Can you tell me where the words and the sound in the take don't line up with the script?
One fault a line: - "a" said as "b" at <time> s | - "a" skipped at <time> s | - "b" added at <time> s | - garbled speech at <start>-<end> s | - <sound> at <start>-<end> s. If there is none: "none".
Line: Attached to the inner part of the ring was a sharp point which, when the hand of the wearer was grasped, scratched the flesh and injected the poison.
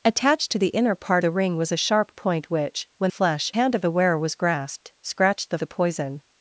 - "of" skipped at 1.2 s
- "the" said as "flesh" at 3.1 s
- "flesh and injected" skipped at 5.6 s